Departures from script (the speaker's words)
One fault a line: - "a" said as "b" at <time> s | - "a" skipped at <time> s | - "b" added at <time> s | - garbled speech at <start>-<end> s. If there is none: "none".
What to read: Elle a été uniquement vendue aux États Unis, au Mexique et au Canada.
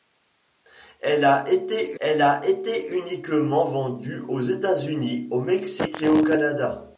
- "elle a été" added at 2.0 s